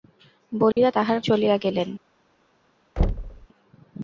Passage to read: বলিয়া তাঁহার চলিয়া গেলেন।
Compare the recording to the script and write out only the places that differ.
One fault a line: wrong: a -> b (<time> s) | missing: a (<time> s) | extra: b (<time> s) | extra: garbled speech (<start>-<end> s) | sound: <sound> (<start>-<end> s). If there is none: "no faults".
sound: dropout (0.7-0.8 s)
sound: thud (3.0-3.5 s)